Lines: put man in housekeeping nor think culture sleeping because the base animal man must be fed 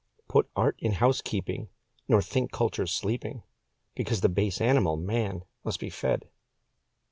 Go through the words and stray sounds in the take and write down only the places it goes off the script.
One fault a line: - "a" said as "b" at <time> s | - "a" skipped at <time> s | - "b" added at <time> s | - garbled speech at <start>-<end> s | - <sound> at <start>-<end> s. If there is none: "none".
- "man" said as "art" at 0.6 s